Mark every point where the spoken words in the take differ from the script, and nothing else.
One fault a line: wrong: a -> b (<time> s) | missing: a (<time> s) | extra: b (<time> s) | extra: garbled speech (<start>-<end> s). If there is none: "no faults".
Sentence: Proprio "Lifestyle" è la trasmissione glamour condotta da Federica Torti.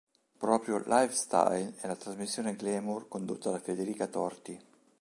no faults